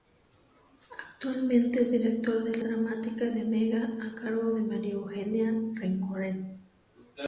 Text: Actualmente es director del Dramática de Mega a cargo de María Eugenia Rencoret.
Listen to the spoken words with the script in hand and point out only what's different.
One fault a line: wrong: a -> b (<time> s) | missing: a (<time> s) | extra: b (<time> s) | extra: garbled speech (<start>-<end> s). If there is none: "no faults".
no faults